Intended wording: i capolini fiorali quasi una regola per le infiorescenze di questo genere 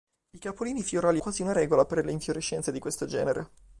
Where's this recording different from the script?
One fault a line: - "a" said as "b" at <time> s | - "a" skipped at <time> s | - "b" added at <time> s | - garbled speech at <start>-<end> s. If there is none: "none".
none